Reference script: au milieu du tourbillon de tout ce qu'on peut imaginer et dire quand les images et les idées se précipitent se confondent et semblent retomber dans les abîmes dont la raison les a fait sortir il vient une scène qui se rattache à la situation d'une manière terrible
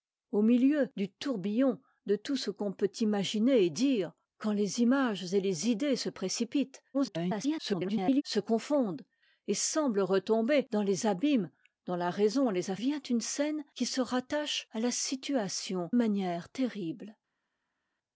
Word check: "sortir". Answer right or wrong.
wrong